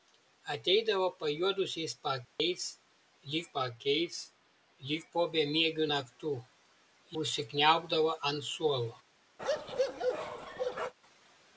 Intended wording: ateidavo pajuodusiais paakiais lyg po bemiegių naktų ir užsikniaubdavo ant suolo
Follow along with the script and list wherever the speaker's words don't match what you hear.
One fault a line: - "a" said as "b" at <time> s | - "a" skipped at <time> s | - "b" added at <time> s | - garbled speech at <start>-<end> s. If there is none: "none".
- "paakiais lyg" added at 3.6 s
- "ir" skipped at 6.3 s